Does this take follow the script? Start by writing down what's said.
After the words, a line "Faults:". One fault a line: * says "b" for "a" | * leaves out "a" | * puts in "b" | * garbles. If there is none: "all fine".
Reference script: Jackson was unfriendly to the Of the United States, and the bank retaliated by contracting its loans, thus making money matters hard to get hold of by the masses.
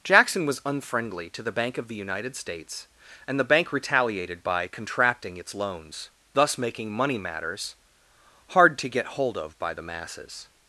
Jackson was unfriendly to the Bank of the United States, and the bank retaliated by contracting its loans, thus making money matters hard to get hold of by the masses.
Faults:
* puts in "Bank"